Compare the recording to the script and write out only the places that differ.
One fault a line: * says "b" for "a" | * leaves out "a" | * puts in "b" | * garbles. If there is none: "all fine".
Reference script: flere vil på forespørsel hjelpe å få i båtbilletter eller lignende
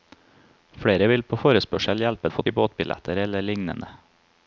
all fine